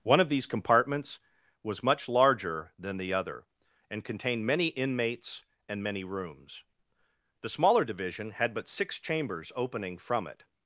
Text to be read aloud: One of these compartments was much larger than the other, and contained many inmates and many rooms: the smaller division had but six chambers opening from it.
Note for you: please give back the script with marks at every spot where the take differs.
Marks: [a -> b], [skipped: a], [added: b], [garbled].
One of these compartments was much larger than the other, and contained many inmates and many rooms: the smaller division had but six chambers opening from it.